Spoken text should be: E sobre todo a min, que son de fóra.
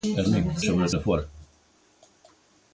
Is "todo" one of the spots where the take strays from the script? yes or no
yes